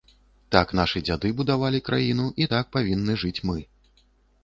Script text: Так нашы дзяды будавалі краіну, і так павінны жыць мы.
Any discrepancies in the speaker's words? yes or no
no